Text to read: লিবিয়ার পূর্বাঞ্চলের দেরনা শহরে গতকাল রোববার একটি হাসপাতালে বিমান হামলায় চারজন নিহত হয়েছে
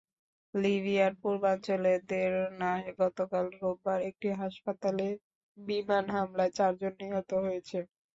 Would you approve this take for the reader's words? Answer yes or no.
no